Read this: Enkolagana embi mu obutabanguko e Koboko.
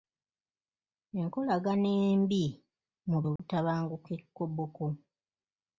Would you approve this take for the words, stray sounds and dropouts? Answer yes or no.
no